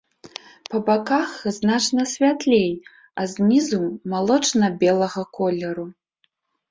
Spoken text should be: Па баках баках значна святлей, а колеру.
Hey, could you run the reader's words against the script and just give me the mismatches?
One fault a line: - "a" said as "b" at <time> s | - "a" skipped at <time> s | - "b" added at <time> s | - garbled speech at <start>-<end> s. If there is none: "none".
- "баках" skipped at 1.3 s
- "знізу малочна белага" added at 3.3 s